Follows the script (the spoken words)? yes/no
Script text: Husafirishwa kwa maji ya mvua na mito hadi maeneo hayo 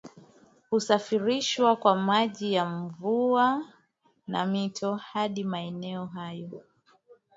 yes